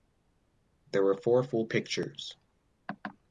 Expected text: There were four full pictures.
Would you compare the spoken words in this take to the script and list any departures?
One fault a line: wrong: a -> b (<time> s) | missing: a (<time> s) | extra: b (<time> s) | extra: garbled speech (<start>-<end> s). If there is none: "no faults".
no faults